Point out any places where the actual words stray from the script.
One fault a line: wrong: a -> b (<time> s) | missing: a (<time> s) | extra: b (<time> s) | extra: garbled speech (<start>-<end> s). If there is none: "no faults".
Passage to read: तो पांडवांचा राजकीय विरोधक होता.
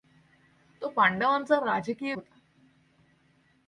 missing: विरोधक (2.1 s)